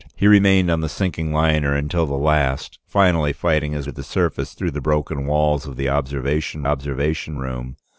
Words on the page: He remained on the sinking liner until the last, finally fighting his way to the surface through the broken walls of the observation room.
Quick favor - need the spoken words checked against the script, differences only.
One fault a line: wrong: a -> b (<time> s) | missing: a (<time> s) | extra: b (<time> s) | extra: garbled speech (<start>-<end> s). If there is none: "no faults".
missing: way (3.9 s)
extra: observation (6.6 s)